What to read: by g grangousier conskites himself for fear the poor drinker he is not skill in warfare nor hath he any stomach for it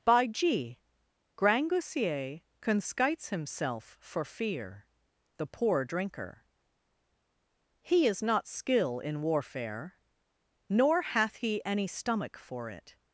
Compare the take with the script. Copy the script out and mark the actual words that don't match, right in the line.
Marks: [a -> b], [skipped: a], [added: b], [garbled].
by g grangousier conskites himself for fear the poor drinker he is not skill in warfare nor hath he any stomach for it